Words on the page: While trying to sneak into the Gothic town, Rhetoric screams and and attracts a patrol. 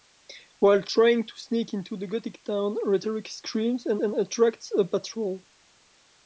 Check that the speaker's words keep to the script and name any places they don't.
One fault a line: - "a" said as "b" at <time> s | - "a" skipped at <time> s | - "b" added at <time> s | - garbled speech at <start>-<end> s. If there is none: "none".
none